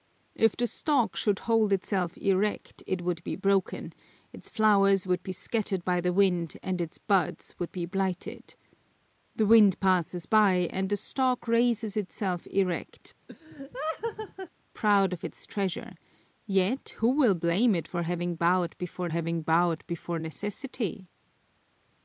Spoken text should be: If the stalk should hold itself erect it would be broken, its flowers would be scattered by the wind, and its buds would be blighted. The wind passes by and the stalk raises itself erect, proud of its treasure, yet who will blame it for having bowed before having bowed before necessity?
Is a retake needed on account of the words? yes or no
no